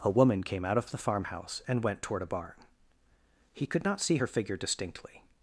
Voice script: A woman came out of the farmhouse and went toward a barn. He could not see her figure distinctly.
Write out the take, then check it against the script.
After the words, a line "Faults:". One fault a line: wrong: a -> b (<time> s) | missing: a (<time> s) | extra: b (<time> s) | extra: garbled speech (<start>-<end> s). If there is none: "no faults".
A woman came out of the farmhouse and went toward a barn. He could not see her figure distinctly.
Faults:
no faults